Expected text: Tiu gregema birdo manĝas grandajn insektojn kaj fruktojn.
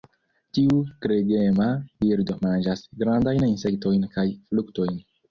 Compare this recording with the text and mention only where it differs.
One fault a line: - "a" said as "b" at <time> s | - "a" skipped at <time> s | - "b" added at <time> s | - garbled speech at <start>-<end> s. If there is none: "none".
none